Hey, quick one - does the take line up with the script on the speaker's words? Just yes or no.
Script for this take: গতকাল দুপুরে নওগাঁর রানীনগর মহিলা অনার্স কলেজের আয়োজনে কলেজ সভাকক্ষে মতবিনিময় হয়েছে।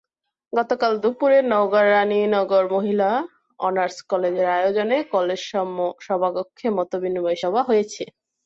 no